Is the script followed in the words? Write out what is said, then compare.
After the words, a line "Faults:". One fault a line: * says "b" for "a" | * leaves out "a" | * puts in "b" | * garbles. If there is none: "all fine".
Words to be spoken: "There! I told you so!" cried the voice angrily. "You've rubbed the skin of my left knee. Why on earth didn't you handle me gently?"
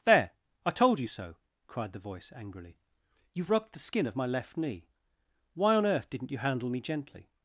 "There! I told you so!" cried the voice angrily. "You've rubbed the skin of my left knee. Why on earth didn't you handle me gently?"
Faults:
all fine